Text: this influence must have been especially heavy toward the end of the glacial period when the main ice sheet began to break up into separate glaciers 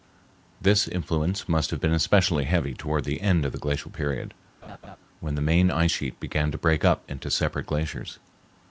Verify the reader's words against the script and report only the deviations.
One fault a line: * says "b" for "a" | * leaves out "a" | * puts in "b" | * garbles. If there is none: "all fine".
all fine